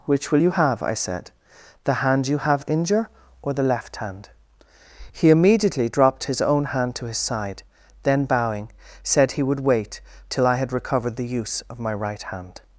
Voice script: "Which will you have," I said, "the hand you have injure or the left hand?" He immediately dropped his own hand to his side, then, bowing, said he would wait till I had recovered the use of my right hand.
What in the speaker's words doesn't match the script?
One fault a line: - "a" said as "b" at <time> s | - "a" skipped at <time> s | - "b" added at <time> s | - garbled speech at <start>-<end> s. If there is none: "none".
none